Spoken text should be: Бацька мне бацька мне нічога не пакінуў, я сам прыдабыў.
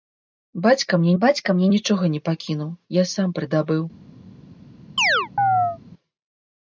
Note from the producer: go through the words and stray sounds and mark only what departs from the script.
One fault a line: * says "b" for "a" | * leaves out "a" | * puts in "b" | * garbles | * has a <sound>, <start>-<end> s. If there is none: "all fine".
* has a chirp, 5.0-5.8 s